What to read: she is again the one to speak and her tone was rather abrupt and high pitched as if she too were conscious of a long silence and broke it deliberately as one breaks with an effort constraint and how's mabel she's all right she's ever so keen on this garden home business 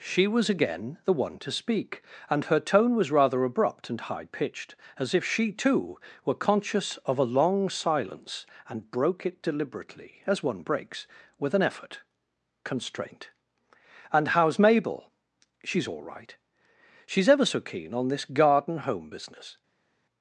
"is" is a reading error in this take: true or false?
true